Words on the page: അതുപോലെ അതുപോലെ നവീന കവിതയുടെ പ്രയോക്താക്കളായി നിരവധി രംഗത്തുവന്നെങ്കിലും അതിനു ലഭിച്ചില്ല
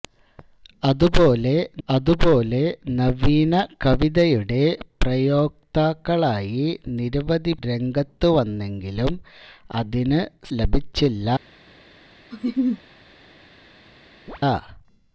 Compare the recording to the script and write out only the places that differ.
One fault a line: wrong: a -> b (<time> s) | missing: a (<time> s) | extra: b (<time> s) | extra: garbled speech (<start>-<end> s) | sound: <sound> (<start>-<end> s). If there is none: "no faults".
sound: laugh (12.3-12.8 s)
sound: chirp (14.3-14.4 s)